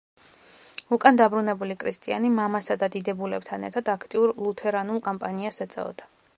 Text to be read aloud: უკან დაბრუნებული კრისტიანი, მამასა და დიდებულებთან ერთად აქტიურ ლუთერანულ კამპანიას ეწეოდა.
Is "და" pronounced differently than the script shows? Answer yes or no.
no